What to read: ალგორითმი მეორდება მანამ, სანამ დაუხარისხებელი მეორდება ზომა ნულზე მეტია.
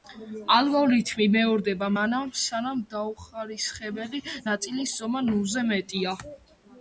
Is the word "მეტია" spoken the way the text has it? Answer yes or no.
yes